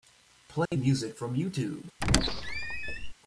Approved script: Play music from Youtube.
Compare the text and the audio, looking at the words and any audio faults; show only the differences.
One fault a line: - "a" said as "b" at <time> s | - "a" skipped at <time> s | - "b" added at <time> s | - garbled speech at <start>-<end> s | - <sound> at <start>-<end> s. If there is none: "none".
- dropout at 0.7-0.7 s
- squeak at 2.0-3.1 s